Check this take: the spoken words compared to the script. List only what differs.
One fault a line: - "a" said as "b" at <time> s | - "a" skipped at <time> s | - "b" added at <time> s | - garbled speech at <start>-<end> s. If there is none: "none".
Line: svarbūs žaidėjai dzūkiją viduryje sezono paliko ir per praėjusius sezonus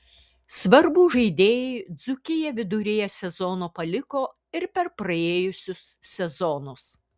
none